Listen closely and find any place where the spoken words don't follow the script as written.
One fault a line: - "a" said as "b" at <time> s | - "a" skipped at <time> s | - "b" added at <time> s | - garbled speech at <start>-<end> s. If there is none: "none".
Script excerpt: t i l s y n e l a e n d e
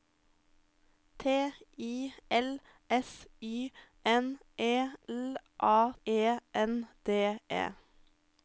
none